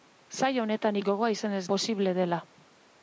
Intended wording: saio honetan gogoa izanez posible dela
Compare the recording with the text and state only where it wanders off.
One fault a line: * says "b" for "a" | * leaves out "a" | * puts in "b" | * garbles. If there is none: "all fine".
all fine